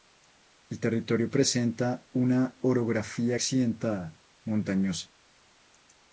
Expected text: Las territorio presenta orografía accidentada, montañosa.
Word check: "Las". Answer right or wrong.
wrong